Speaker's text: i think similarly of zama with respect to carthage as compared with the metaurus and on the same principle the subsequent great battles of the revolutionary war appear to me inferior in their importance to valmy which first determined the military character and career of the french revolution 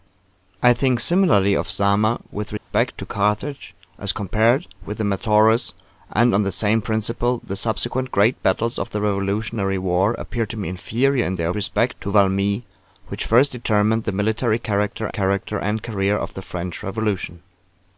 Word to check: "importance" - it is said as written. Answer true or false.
false